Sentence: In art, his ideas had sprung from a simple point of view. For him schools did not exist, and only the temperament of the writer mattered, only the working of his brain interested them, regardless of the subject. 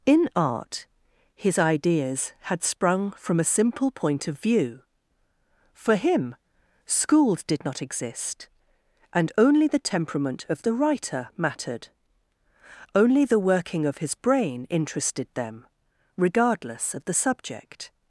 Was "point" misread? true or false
false